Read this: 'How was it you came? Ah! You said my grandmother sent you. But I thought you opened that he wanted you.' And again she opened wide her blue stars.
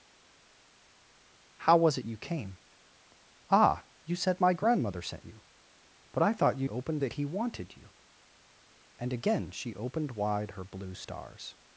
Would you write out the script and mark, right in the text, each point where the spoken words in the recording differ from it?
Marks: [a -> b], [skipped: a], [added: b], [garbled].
'How was it you came? Ah! You said my grandmother sent you. But I thought you opened that he wanted you.' And again she opened wide her blue stars.